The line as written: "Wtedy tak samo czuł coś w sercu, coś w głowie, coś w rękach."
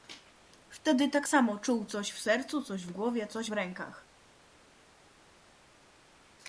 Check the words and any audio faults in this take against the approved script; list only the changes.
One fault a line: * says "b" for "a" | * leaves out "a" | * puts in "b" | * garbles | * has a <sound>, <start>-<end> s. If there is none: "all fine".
all fine